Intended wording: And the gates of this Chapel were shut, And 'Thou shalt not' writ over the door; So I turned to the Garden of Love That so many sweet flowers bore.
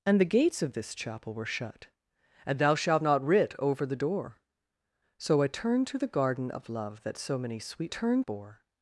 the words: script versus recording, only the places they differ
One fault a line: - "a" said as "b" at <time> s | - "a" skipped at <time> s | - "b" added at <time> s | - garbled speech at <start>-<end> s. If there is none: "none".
- "flowers" said as "turned" at 7.9 s